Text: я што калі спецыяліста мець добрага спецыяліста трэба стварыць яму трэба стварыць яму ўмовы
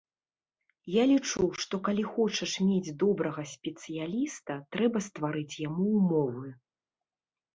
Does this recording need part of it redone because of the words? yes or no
yes